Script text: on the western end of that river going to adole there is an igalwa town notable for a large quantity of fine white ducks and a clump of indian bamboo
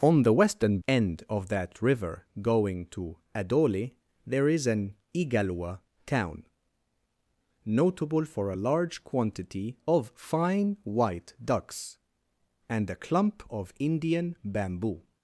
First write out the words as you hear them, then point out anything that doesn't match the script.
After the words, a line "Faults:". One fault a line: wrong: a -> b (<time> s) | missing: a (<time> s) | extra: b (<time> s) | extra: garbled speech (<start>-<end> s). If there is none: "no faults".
on the western end of that river going to adole there is an igalwa town notable for a large quantity of fine white ducks and a clump of indian bamboo
Faults:
no faults